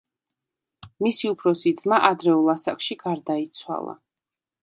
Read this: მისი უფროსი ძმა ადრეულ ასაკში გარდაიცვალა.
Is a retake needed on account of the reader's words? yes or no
no